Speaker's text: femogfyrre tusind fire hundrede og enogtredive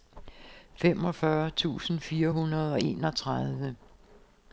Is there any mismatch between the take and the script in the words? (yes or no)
no